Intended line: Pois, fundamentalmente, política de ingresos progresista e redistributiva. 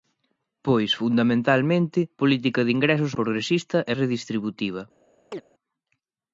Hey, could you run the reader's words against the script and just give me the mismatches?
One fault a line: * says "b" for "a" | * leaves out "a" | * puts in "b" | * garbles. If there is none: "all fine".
all fine